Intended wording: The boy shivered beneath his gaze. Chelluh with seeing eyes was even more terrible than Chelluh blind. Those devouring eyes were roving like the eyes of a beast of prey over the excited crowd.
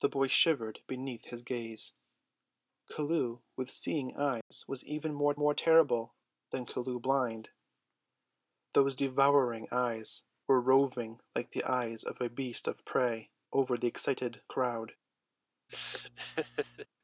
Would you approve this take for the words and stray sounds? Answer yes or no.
no